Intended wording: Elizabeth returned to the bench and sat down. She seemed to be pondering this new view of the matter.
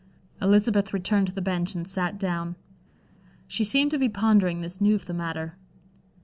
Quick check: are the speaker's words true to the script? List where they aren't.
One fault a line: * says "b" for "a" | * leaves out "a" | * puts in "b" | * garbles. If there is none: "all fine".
* leaves out "view"